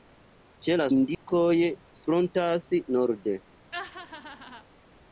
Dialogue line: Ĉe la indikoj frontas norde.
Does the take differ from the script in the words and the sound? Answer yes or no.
yes